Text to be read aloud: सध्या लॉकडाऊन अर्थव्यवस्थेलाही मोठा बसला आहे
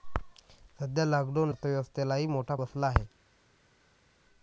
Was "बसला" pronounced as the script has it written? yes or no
yes